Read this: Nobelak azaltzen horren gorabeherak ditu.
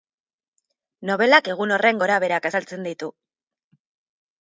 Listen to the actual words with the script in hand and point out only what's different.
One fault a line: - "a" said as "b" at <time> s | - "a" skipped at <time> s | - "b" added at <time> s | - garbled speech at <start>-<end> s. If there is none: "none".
- "azaltzen" said as "egun" at 1.6 s
- "azaltzen" added at 2.5 s